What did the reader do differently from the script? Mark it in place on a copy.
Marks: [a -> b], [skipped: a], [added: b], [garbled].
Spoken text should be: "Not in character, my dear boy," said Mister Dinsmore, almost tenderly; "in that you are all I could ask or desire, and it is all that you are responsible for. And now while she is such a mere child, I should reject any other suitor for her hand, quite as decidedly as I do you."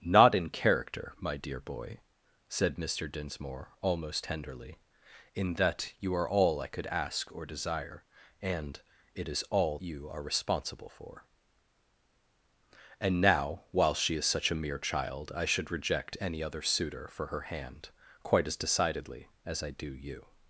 "Not in character, my dear boy," said Mister Dinsmore, almost tenderly; "in that you are all I could ask or desire, and it is all [skipped: that] you are responsible for. And now while she is such a mere child, I should reject any other suitor for her hand, quite as decidedly as I do you."